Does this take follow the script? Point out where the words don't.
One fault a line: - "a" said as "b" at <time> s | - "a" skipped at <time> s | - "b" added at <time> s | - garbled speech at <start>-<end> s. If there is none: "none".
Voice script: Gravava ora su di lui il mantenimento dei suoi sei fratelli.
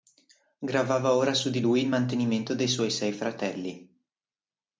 none